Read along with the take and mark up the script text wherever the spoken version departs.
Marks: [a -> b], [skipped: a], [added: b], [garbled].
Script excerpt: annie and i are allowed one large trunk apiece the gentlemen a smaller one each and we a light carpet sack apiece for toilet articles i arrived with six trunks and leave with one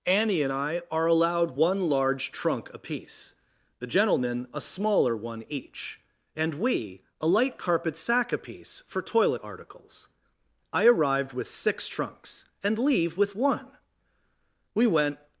annie and i are allowed one large trunk apiece the gentlemen a smaller one each and we a light carpet sack apiece for toilet articles i arrived with six trunks and leave with one [added: we went]